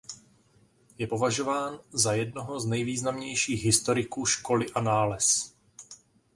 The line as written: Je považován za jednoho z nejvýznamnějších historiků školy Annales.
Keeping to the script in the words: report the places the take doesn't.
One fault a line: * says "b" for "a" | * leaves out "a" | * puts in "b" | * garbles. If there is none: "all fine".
all fine